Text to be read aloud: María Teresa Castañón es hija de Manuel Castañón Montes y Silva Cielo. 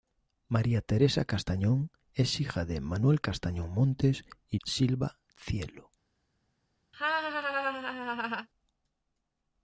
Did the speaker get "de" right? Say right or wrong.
right